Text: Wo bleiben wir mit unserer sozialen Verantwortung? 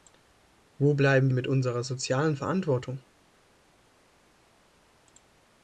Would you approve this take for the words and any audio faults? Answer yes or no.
no